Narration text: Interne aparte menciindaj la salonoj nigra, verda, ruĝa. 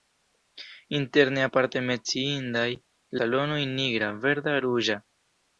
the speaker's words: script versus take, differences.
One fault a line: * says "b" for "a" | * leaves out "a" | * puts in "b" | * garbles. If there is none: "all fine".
* leaves out "la"